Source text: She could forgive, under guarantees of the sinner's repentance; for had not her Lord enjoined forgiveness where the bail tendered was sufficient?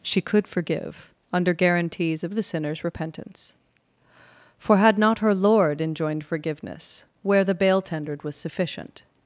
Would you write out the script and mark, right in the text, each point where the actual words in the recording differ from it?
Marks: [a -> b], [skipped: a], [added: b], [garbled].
She could forgive, under guarantees of the sinner's repentance; for had not her Lord enjoined forgiveness where the bail tendered was sufficient?